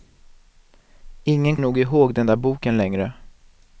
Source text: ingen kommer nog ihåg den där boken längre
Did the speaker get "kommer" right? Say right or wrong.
wrong